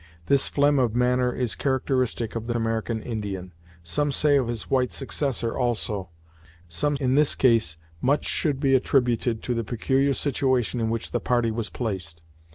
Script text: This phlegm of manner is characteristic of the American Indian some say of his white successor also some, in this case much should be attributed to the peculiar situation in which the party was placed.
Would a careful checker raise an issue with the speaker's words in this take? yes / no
no